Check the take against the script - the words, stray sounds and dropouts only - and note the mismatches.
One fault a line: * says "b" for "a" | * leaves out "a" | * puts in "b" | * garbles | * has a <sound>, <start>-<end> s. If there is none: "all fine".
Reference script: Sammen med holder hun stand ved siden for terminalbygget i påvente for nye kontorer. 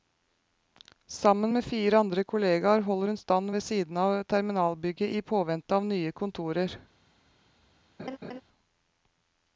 * puts in "fire andre kolleger"
* says "av" for "for"
* says "av" for "for"
* has a laugh, 8.0-8.4 s